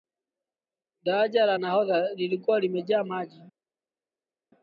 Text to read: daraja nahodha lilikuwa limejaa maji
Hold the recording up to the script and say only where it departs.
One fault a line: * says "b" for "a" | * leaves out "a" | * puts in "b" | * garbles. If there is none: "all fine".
* puts in "la"